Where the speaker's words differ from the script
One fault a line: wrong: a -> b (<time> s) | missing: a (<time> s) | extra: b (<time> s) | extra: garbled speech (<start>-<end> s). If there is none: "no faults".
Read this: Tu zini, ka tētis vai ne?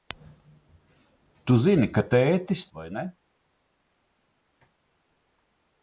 no faults